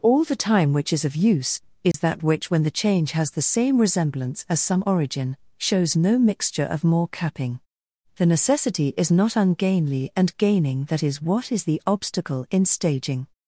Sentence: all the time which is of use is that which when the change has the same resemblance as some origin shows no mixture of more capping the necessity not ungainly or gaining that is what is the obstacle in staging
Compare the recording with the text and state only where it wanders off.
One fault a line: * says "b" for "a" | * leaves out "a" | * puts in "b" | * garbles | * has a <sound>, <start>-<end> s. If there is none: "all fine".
* has a dropout, 1.9-1.9 s
* puts in "is"
* says "and" for "or"